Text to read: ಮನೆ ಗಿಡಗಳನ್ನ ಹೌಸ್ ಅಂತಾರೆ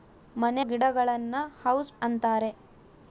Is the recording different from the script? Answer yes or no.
no